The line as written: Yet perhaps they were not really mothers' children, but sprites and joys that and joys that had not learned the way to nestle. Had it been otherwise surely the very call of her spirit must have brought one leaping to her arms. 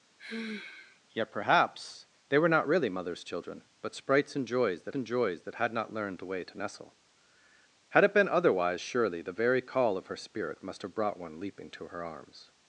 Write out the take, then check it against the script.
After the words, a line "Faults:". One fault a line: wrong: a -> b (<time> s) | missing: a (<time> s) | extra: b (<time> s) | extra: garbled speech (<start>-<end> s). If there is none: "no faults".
Yet perhaps they were not really mothers' children, but sprites and joys that and joys that had not learned the way to nestle. Had it been otherwise surely the very call of her spirit must have brought one leaping to her arms.
Faults:
no faults